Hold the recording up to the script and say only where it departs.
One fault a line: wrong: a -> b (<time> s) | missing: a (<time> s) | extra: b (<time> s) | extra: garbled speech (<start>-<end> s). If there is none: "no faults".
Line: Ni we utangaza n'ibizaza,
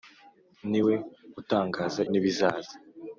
no faults